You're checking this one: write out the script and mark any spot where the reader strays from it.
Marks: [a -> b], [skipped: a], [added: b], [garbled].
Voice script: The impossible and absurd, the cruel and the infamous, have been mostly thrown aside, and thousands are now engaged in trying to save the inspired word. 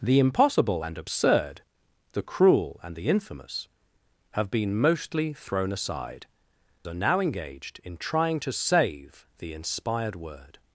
The impossible and absurd, the cruel and the infamous, have been mostly thrown aside, [skipped: and thousands] are now engaged in trying to save the inspired word.